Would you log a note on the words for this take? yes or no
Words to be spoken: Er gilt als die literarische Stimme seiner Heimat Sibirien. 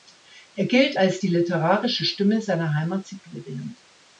no